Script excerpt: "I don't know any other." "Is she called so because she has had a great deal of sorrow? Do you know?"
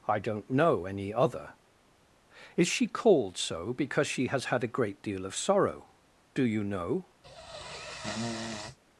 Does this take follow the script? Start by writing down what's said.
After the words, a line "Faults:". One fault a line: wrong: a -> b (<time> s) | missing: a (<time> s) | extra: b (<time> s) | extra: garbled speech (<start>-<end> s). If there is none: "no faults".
"I don't know any other." "Is she called so because she has had a great deal of sorrow? Do you know?"
Faults:
no faults